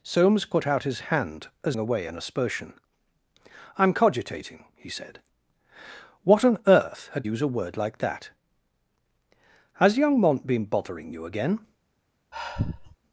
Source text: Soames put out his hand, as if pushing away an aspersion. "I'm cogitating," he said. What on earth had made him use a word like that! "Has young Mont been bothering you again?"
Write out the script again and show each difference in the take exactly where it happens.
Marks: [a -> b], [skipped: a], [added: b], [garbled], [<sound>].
Soames put out his hand, as [skipped: if pushing] away an aspersion. "I'm cogitating," he said. What on earth had [skipped: made him] use a word like that! "Has young Mont been bothering you again?" [sigh]